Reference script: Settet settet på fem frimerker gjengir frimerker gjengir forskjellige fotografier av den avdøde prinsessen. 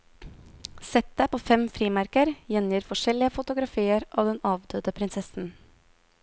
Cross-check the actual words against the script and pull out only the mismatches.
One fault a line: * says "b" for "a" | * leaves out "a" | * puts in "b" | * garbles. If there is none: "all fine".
* leaves out "settet"
* leaves out "frimerker gjengir"